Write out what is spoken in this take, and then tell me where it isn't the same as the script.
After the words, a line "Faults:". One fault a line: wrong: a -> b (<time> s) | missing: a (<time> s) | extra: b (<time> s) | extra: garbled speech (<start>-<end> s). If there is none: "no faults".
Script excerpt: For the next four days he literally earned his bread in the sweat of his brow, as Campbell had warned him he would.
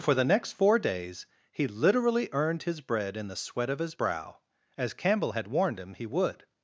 For the next four days he literally earned his bread in the sweat of his brow, as Campbell had warned him he would.
Faults:
no faults